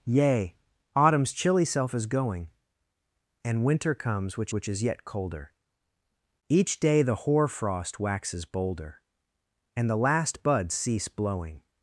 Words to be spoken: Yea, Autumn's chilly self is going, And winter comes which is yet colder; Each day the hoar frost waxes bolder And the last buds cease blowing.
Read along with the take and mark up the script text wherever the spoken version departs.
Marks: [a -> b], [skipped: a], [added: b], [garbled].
Yea, Autumn's chilly self is going, And winter comes which [added: which] is yet colder; Each day the hoar frost waxes bolder And the last buds cease blowing.